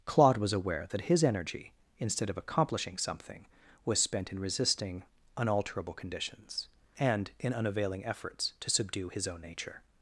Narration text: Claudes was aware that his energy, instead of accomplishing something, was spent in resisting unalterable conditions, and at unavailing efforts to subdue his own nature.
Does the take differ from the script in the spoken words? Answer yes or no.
yes